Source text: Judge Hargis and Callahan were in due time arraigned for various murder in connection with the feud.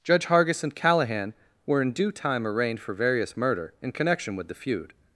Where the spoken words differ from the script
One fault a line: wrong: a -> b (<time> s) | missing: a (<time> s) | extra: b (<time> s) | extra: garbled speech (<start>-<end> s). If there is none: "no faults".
no faults